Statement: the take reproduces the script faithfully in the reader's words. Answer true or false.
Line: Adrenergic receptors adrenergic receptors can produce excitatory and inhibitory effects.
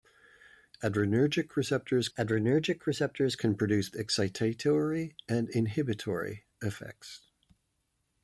true